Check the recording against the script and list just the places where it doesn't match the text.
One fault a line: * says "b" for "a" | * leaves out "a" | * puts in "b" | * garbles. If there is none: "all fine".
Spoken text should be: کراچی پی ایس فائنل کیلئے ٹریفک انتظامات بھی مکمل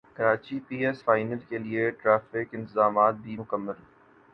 all fine